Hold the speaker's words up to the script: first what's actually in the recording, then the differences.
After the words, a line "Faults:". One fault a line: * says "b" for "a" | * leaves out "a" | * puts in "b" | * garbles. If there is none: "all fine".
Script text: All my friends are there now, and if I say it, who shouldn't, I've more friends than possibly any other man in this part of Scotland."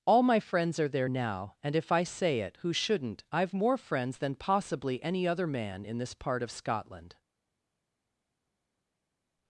All my friends are there now, and if I say it, who shouldn't, I've more friends than possibly any other man in this part of Scotland."
Faults:
all fine